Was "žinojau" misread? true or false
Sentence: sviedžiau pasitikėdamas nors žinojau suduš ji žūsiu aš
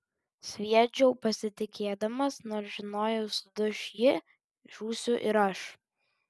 false